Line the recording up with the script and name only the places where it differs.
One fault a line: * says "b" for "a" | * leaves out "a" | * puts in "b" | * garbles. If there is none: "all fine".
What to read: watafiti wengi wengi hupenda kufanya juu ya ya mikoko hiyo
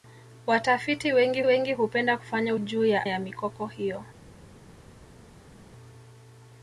all fine